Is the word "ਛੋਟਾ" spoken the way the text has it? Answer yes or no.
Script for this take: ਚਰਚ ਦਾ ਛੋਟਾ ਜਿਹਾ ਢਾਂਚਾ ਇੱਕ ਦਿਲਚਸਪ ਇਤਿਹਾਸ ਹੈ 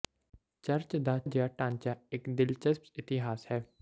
no